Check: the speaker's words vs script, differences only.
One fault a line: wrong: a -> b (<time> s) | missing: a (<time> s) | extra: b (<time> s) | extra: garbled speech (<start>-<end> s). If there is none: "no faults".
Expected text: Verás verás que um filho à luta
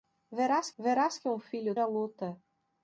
no faults